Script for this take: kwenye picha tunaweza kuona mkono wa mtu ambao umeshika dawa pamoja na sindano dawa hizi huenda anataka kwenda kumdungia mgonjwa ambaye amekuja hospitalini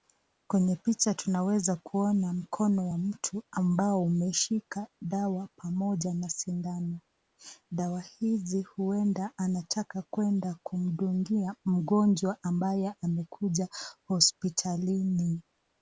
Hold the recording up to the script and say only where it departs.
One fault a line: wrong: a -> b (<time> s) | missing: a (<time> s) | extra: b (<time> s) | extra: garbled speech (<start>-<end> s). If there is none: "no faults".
no faults